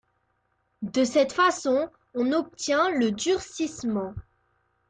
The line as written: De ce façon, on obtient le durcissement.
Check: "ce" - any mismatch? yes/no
yes